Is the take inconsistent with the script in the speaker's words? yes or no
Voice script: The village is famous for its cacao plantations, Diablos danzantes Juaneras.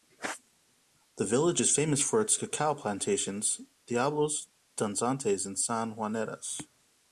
yes